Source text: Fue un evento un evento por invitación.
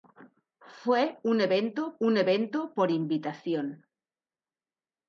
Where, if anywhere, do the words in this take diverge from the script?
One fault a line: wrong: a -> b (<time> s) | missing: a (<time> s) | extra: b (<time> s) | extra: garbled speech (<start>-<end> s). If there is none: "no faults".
no faults